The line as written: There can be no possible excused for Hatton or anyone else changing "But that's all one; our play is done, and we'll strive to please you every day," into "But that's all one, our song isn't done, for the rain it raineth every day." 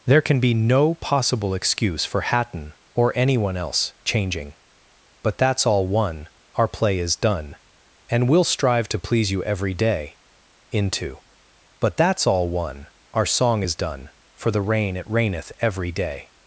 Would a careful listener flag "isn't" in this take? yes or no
yes